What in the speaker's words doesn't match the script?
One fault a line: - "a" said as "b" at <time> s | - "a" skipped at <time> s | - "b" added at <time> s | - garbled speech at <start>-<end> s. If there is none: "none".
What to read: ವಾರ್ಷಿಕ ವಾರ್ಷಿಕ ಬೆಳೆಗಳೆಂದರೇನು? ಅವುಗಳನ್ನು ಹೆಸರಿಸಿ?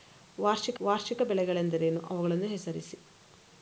none